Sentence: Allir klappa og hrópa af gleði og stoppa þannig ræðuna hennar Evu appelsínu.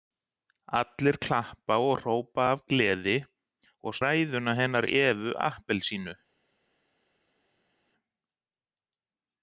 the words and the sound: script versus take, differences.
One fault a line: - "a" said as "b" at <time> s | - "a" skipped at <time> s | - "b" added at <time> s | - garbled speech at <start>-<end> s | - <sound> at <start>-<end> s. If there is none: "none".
- "stoppa þannig" skipped at 4.0 s